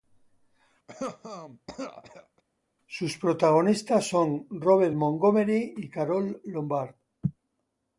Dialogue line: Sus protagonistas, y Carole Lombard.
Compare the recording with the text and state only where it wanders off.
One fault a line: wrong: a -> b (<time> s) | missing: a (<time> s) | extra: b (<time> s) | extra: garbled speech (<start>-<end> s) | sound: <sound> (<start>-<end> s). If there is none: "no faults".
sound: cough (0.9-2.4 s)
extra: son Robert Montgomery (4.1 s)